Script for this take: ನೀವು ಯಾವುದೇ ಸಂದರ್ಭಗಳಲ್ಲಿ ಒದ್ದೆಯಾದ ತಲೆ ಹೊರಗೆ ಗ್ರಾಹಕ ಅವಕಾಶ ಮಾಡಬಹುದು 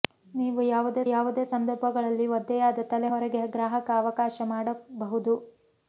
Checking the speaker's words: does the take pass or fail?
fail